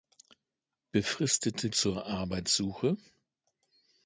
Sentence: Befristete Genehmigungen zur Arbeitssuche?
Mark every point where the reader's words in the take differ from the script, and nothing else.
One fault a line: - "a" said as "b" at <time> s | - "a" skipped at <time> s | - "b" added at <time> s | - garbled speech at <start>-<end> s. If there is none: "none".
- "Genehmigungen" skipped at 1.7 s